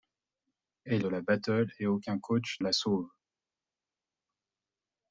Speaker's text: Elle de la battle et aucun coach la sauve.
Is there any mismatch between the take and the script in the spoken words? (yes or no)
no